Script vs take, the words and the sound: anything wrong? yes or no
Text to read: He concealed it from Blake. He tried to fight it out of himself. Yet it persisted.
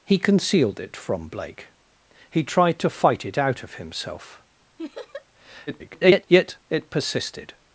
yes